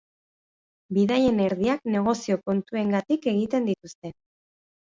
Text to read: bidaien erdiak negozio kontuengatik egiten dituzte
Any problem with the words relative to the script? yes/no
no